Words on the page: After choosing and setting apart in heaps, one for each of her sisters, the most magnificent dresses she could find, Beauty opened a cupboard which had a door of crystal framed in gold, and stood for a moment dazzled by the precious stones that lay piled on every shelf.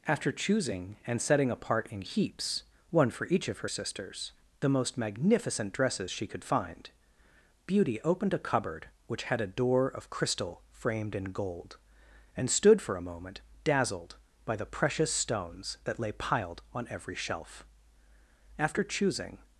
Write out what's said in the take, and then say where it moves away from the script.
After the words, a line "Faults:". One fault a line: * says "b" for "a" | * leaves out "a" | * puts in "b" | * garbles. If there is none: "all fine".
After choosing and setting apart in heaps, one for each of her sisters, the most magnificent dresses she could find, Beauty opened a cupboard which had a door of crystal framed in gold, and stood for a moment dazzled by the precious stones that lay piled on every shelf. After choosing
Faults:
* puts in "After choosing"